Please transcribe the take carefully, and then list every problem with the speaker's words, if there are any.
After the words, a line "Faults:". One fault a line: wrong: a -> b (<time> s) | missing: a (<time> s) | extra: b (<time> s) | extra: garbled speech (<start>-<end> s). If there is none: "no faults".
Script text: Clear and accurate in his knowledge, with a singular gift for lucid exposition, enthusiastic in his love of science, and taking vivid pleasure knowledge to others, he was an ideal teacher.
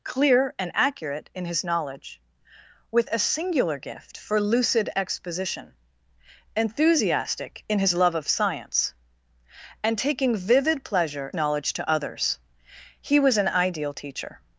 Clear and accurate in his knowledge, with a singular gift for lucid exposition, enthusiastic in his love of science, and taking vivid pleasure knowledge to others, he was an ideal teacher.
Faults:
no faults